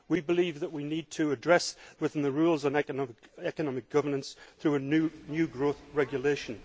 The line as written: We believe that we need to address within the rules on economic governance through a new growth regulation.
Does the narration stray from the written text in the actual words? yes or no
no